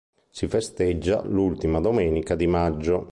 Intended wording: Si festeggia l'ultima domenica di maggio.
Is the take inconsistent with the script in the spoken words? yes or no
no